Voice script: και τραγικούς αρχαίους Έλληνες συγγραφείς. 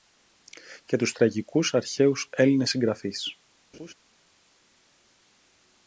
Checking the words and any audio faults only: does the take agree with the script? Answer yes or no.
no